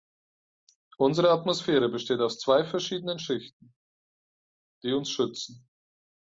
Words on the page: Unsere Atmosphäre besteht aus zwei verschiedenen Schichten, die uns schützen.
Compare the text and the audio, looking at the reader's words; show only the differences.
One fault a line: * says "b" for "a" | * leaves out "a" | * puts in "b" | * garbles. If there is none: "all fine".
all fine